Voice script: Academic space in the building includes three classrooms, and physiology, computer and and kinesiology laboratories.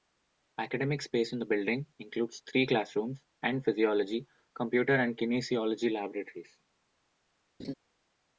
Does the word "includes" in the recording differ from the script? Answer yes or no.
no